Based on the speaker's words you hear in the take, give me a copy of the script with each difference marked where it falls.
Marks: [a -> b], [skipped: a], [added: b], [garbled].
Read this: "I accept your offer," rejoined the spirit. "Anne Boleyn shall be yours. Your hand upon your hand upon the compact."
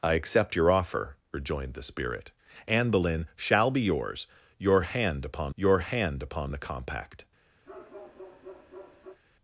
"I accept your offer," rejoined the spirit. "Anne Boleyn shall be yours. Your hand upon your hand upon the compact."